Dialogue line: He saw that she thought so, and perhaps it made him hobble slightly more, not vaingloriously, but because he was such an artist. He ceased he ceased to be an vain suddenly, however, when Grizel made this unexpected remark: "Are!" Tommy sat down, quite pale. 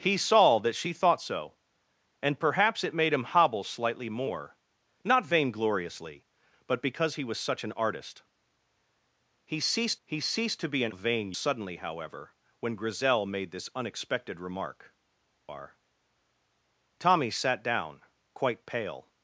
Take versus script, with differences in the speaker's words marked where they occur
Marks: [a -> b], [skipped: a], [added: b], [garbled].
He saw that she thought so, and perhaps it made him hobble slightly more, not vaingloriously, but because he was such an artist. He ceased he ceased to be an vain suddenly, however, when Grizel made this unexpected remark: "Are!" Tommy sat down, quite pale.